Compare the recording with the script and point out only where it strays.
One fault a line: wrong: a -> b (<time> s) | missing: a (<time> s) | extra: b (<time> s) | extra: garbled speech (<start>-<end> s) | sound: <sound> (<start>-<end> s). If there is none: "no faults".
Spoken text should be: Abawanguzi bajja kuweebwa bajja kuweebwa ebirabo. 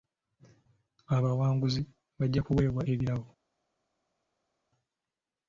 missing: bajja kuweebwa (2.8 s)